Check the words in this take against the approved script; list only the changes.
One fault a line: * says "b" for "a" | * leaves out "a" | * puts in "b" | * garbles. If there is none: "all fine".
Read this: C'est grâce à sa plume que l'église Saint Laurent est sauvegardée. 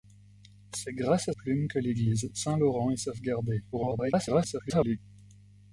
* leaves out "sa"
* garbles